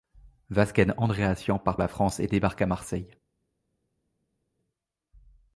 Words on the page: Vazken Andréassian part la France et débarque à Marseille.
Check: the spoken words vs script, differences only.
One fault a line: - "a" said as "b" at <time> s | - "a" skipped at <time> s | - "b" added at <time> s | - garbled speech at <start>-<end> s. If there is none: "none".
none